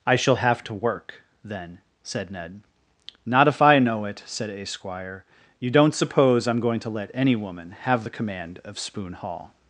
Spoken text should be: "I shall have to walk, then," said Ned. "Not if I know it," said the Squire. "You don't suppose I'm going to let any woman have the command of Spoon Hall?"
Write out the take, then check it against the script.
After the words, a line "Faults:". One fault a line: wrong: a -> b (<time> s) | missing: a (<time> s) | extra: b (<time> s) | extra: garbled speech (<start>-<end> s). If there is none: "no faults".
"I shall have to work, then," said Ned. "Not if I know it," said a Squire. "You don't suppose I'm going to let any woman have the command of Spoon Hall?"
Faults:
wrong: walk -> work (0.7 s)
wrong: the -> a (4.5 s)